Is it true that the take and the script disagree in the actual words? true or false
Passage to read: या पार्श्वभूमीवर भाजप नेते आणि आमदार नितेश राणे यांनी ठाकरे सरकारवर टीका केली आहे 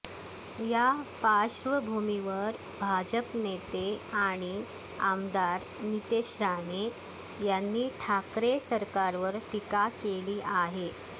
false